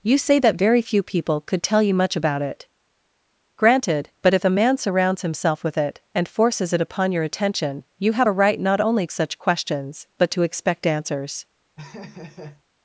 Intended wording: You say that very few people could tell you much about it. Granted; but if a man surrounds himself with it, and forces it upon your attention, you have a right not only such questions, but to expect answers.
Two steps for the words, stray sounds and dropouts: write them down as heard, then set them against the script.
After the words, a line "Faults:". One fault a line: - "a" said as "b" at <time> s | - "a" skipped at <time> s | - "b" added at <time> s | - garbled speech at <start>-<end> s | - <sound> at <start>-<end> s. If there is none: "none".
You say that very few people could tell you much about it. Granted; but if a man surrounds himself with it, and forces it upon your attention, you have a right not only such questions, but to expect answers.
Faults:
- laugh at 11.8-12.6 s